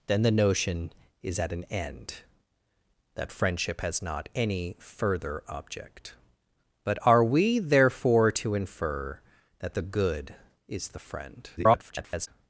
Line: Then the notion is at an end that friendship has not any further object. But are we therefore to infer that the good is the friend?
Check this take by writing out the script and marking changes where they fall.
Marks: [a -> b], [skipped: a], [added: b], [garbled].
Then the notion is at an end that friendship has not any further object. But are we therefore to infer that the good is the friend? [garbled]